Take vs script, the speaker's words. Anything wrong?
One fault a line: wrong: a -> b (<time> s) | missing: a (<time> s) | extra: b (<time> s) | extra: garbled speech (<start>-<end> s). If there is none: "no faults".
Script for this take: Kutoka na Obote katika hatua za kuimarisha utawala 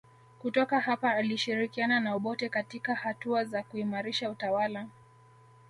extra: hapa alishirikiana (0.8 s)